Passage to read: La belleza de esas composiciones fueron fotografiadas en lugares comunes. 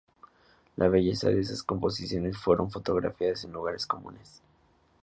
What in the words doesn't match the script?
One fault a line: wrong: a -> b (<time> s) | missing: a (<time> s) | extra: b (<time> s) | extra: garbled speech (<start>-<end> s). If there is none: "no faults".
no faults